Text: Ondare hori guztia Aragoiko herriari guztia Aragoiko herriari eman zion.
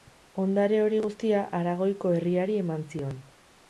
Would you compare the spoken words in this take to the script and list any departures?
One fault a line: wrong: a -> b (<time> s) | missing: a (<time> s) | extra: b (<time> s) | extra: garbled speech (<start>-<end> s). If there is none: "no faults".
missing: guztia Aragoiko herriari (2.6 s)